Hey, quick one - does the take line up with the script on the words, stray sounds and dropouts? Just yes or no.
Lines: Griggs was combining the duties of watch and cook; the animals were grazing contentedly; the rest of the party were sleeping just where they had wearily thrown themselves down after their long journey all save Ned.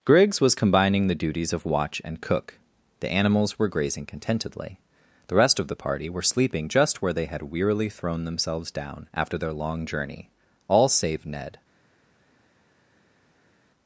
yes